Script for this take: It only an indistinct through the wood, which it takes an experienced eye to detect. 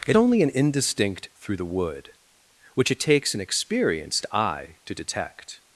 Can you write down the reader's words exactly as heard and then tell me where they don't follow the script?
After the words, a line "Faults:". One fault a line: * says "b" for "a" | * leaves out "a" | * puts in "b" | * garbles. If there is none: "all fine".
It only an indistinct through the wood, which it takes an experienced eye to detect.
Faults:
all fine